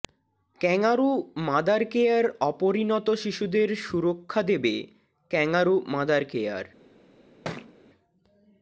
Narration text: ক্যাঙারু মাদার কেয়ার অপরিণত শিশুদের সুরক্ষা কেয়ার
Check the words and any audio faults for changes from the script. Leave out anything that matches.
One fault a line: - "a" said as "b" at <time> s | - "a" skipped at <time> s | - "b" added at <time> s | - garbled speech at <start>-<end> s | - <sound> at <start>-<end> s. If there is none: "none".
- "দেবে ক্যাঙারু মাদার" added at 4.4 s
- thud at 7.4-7.7 s